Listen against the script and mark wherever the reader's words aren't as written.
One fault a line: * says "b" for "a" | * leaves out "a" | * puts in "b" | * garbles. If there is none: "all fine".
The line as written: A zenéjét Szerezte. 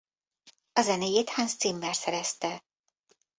* puts in "Hans Zimmer"